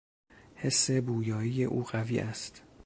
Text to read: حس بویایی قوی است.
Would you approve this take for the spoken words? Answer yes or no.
no